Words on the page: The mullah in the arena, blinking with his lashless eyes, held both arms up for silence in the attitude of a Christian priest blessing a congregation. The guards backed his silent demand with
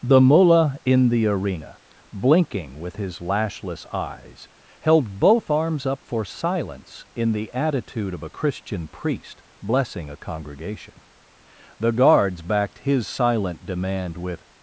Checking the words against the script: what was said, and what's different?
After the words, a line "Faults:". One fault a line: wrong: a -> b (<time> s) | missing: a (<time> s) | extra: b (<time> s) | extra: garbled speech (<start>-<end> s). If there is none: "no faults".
The mullah in the arena, blinking with his lashless eyes, held both arms up for silence in the attitude of a Christian priest blessing a congregation. The guards backed his silent demand with
Faults:
no faults